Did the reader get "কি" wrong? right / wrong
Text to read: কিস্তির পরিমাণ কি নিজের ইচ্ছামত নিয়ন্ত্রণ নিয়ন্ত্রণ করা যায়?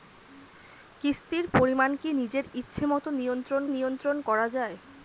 right